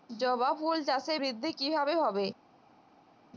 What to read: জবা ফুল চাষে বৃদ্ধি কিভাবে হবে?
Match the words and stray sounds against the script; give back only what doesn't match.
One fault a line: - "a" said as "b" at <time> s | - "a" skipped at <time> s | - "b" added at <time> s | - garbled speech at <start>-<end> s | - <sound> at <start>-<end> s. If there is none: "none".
none